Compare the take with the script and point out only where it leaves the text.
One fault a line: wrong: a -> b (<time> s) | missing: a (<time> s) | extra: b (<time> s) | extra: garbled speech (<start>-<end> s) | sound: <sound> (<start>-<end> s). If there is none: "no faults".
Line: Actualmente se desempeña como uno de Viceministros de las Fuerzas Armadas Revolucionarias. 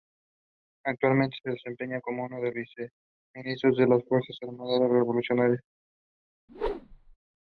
sound: whoosh (6.5-7.2 s)